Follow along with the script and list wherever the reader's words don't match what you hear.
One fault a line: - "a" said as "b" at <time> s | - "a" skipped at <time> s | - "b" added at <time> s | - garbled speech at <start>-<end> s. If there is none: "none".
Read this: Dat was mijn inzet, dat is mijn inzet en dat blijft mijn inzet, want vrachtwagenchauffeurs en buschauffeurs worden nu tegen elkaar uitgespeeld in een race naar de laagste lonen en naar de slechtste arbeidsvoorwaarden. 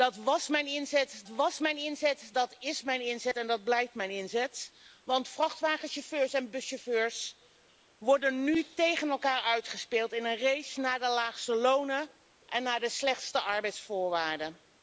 - "was mijn inzet" added at 1.3 s